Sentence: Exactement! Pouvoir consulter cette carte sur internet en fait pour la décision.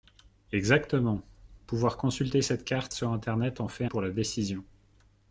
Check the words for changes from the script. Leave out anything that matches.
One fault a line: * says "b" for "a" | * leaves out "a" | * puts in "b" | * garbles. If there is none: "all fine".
all fine